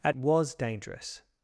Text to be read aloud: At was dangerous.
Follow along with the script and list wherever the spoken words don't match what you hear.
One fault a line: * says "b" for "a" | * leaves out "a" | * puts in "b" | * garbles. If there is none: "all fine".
all fine